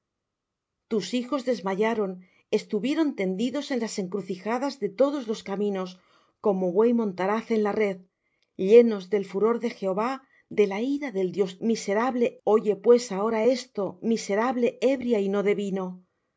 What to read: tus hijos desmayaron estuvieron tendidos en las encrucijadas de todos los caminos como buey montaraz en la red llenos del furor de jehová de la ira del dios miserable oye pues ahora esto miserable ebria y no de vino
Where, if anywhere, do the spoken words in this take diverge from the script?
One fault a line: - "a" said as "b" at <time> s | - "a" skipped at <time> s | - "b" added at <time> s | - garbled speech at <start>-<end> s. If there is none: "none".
none